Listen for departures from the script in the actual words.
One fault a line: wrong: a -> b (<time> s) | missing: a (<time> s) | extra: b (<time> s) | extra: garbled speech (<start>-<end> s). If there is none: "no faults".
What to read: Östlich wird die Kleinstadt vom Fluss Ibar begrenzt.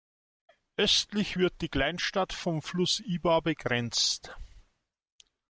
no faults